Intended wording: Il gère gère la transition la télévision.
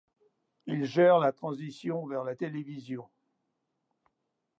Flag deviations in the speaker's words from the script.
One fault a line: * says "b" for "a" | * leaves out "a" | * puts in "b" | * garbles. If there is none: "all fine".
* leaves out "gère"
* puts in "vers"